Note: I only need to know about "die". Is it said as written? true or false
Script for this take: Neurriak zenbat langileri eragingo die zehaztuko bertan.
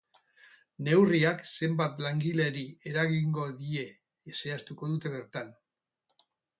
true